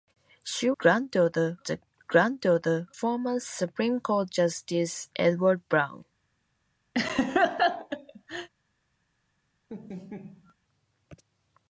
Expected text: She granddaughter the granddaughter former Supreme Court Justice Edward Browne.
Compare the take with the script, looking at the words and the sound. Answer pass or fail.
fail